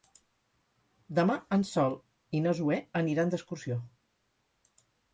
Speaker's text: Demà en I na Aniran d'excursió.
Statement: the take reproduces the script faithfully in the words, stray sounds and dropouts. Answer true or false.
false